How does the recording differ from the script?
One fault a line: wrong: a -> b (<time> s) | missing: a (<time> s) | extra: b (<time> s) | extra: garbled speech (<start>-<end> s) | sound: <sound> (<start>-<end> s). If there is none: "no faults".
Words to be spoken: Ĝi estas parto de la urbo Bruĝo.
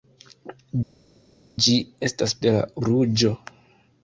missing: parto (2.3 s)
missing: urbo (2.6 s)